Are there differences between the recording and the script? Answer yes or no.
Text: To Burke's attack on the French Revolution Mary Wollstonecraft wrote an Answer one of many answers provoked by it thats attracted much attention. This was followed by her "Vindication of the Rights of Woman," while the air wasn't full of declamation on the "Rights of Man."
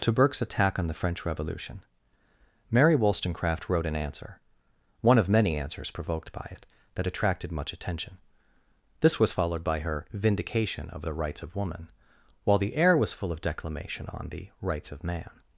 yes